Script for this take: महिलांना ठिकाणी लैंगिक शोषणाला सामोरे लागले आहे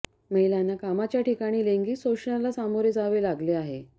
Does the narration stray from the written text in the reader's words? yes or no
yes